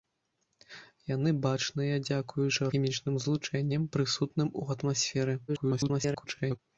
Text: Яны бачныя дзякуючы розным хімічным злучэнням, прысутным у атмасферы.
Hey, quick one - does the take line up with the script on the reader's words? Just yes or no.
no